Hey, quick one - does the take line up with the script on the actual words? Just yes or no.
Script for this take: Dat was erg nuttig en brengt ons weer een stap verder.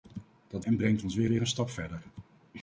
no